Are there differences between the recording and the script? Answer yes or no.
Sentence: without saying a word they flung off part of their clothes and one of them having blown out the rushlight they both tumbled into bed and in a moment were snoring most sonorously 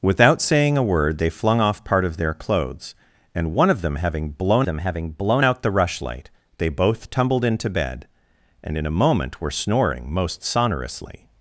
yes